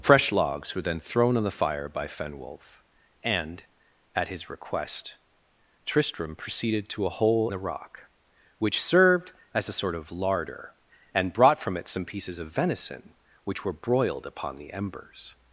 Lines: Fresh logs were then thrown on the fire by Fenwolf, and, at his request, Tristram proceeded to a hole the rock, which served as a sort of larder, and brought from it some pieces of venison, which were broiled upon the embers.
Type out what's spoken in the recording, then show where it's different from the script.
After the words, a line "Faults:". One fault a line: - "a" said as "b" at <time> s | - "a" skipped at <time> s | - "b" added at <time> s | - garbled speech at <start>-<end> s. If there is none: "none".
Fresh logs were then thrown on the fire by Fenwolf, and, at his request, Tristram proceeded to a hole the rock, which served as a sort of larder, and brought from it some pieces of venison, which were broiled upon the embers.
Faults:
none